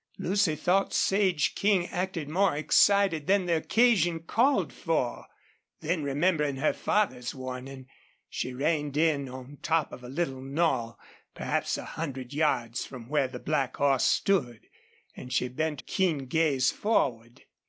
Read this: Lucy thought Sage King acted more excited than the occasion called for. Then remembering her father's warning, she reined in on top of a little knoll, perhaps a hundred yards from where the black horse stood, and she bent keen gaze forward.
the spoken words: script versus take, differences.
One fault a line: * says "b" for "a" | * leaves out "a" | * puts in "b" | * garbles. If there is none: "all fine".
all fine